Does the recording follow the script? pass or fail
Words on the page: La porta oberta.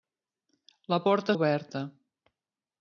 pass